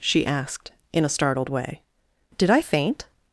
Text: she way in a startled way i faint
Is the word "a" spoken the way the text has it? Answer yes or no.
yes